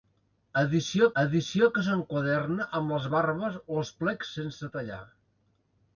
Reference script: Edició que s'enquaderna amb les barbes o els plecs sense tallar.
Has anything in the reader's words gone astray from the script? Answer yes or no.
yes